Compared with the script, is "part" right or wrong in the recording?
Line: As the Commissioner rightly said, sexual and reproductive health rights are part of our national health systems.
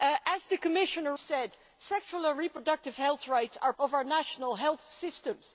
wrong